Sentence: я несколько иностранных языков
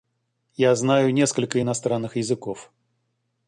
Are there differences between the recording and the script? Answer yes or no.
yes